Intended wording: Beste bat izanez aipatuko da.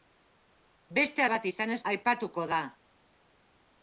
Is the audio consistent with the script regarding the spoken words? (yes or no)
yes